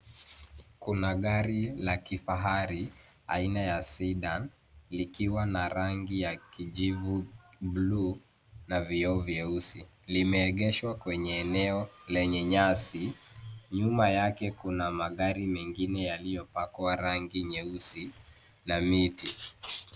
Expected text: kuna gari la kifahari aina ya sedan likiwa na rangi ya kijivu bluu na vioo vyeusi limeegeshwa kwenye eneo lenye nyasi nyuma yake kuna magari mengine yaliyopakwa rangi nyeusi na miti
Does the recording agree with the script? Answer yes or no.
yes